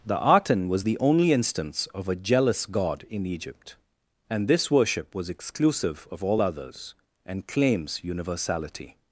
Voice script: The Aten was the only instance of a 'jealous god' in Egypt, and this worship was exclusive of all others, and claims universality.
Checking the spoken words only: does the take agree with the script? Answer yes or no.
yes